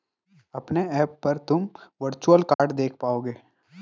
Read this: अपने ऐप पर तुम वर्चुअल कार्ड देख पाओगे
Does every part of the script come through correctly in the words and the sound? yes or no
no